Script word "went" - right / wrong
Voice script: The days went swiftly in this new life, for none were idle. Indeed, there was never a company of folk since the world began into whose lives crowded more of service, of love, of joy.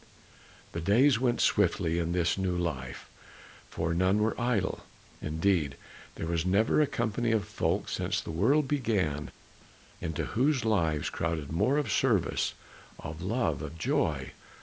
right